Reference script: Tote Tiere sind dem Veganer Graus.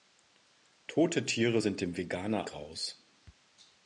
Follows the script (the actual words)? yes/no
yes